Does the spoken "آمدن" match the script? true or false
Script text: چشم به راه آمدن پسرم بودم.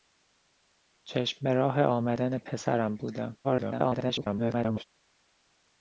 true